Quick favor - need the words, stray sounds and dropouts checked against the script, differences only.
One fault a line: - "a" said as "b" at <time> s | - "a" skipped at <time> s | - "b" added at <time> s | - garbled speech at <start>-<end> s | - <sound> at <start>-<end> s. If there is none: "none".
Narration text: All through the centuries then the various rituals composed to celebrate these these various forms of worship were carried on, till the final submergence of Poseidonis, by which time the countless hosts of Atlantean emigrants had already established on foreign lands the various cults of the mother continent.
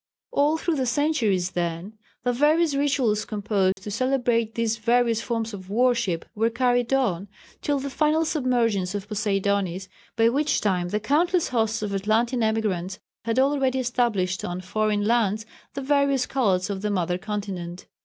- dropout at 3.7-3.8 s
- "these" skipped at 4.8 s